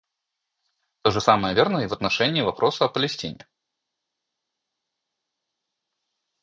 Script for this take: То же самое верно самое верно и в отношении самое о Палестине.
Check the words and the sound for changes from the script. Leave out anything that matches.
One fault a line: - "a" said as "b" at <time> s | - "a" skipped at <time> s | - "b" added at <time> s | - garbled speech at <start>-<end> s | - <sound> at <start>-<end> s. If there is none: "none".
- "самое верно" skipped at 1.8 s
- "самое" said as "вопроса" at 2.4 s